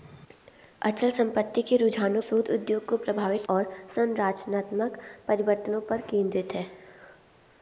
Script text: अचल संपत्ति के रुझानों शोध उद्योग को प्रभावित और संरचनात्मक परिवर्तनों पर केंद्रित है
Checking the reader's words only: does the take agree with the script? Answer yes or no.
yes